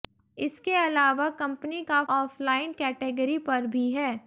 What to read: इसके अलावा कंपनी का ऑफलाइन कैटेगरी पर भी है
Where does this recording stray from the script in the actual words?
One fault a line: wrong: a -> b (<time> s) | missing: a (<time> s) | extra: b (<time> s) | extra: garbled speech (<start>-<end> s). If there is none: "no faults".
no faults